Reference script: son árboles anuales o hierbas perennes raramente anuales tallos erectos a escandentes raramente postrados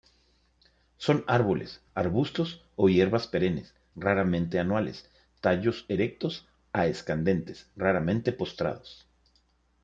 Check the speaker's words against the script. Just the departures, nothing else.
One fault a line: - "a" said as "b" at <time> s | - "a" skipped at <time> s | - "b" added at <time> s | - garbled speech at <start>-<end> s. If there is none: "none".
- "anuales" said as "arbustos" at 1.9 s